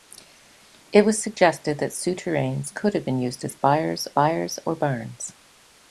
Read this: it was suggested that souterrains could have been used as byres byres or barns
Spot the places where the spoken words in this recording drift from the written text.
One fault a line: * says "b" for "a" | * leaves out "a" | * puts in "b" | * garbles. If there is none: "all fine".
all fine